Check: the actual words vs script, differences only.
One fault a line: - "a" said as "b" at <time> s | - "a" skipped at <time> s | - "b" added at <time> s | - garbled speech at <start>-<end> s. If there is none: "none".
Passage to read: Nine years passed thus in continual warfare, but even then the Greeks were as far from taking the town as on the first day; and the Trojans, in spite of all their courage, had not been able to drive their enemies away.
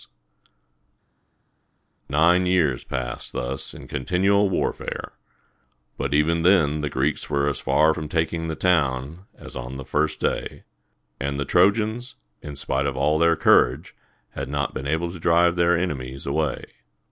none